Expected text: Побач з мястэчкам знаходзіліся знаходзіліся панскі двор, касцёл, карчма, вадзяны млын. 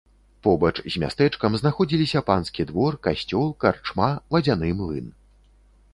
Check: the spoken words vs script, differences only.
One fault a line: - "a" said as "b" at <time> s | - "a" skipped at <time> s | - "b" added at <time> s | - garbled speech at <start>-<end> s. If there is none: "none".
- "знаходзіліся" skipped at 2.2 s